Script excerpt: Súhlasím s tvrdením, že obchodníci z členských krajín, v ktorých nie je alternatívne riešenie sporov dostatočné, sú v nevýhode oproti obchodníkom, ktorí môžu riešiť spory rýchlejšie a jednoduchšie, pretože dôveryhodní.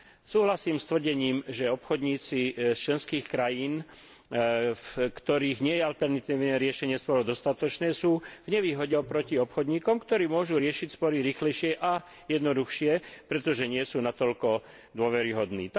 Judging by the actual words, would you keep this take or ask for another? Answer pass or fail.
fail